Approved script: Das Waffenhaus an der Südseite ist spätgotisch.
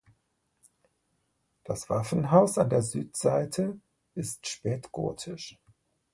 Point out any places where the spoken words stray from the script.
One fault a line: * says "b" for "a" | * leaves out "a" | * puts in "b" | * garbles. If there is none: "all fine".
all fine